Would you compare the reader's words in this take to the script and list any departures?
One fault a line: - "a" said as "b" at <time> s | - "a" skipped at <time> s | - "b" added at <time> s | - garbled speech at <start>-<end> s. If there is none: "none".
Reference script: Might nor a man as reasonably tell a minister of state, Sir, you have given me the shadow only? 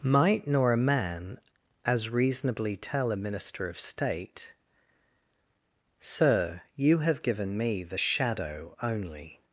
none